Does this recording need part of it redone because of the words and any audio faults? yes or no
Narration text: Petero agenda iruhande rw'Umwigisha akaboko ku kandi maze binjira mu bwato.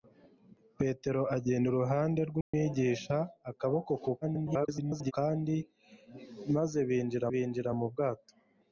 yes